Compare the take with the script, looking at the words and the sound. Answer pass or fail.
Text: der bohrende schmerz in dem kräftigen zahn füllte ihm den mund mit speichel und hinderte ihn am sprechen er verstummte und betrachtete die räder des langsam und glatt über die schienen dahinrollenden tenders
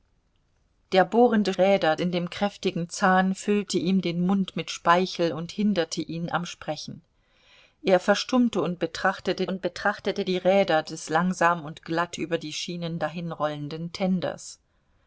fail